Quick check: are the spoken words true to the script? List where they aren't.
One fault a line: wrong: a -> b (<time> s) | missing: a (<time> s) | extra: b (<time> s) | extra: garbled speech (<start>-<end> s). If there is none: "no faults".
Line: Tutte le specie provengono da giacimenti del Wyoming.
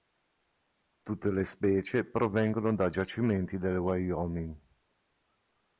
no faults